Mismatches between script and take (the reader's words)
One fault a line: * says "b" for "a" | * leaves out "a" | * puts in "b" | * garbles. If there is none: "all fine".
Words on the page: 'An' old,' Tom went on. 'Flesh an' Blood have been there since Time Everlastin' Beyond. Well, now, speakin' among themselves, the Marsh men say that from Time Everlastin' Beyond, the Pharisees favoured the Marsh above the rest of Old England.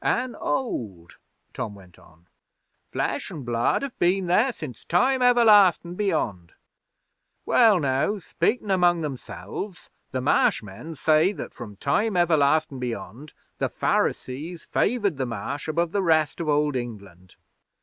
all fine